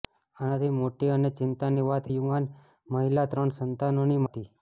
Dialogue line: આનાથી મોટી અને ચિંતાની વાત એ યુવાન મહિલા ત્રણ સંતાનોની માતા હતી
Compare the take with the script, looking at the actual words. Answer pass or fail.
fail